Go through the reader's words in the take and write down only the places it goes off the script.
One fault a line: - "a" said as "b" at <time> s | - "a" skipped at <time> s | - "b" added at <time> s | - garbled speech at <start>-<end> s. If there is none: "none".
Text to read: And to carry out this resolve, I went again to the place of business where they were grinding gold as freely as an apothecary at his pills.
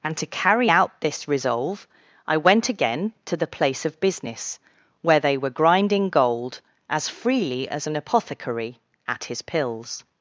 none